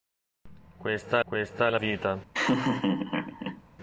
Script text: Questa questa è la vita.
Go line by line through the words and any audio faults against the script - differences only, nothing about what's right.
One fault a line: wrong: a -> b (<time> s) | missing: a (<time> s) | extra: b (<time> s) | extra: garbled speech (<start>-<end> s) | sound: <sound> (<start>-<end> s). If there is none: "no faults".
sound: laugh (2.3-3.6 s)